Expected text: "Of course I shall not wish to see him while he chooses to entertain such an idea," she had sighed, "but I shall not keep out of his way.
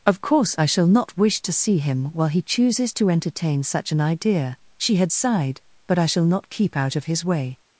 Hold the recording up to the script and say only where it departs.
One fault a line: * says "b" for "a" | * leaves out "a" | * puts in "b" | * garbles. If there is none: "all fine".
all fine